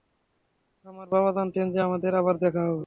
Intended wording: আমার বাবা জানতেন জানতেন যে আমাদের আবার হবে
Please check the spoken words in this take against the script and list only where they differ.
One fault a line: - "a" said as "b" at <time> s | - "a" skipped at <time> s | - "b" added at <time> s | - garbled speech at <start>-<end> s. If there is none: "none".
- "জানতেন" skipped at 1.6 s
- "দেখা" added at 2.4 s